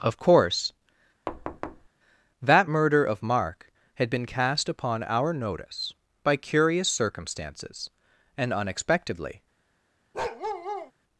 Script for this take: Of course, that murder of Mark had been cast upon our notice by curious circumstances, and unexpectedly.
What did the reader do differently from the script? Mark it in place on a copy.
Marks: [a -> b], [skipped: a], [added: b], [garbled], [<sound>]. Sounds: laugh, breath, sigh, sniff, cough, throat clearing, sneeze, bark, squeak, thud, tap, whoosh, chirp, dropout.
Of course, [thud] that murder of Mark had been cast upon our notice by curious circumstances, and unexpectedly. [bark]